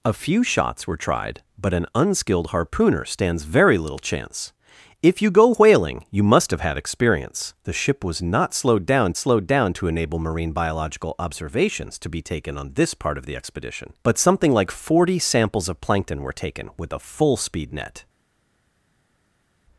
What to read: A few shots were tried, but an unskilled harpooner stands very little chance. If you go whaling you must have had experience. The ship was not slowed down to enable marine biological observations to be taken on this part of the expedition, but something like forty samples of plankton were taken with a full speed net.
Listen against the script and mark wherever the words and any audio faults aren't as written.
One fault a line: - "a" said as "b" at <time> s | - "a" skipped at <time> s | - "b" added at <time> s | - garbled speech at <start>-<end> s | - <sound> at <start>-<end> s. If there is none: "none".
- "slowed down" added at 9.2 s